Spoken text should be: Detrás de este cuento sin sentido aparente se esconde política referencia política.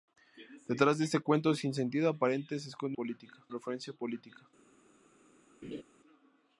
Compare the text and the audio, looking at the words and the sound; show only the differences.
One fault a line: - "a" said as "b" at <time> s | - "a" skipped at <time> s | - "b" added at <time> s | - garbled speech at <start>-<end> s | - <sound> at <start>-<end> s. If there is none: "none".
- laugh at 5.6-5.8 s